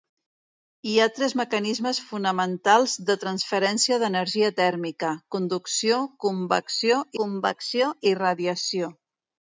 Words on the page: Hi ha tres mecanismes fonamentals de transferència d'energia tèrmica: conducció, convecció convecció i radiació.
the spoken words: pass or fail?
pass